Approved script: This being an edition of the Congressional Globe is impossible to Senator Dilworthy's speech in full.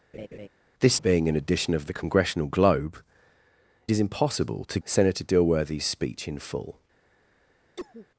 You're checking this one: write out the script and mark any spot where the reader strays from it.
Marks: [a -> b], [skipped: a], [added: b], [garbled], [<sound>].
[laugh] This being an edition of the Congressional Globe is impossible to Senator Dilworthy's speech in full. [cough]